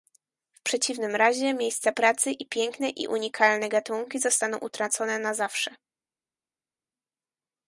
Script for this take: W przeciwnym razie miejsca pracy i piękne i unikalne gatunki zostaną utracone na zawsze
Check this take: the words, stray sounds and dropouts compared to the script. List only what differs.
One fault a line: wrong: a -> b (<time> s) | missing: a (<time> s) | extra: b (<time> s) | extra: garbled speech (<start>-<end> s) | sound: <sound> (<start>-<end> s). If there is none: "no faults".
no faults